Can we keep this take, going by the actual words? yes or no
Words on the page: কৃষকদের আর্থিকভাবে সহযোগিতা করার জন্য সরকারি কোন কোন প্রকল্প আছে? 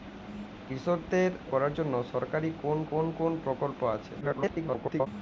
no